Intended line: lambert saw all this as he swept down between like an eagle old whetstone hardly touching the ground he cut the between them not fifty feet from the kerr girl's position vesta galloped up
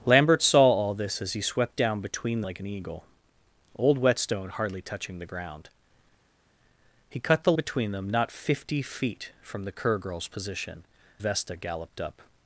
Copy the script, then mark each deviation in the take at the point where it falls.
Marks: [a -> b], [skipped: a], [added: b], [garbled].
lambert saw all this as he swept down between like an eagle old whetstone hardly touching the ground he cut the between them not fifty feet from the kerr girl's position vesta galloped up